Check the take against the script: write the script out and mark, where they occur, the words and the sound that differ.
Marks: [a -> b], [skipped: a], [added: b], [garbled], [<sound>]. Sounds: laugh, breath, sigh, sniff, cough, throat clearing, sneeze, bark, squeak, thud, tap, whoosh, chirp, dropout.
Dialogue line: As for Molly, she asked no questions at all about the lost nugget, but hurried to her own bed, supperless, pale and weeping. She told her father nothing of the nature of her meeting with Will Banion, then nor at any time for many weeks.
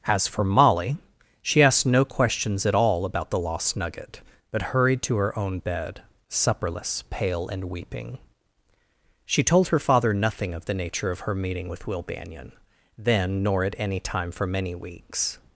As for Molly, she asked no questions at all about the lost nugget, but hurried to her own bed, supperless, pale and weeping. She told her father nothing of the nature of her meeting with Will Banion, then nor at any time for many weeks.